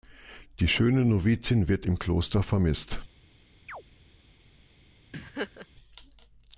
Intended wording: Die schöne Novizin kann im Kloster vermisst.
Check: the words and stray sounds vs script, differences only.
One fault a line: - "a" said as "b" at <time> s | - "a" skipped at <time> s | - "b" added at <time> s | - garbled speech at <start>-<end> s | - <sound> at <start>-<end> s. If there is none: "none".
- "kann" said as "wird" at 1.7 s
- chirp at 3.7-3.8 s
- laugh at 5.1-5.7 s